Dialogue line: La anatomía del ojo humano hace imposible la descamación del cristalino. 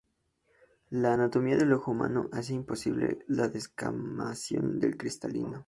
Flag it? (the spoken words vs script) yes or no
no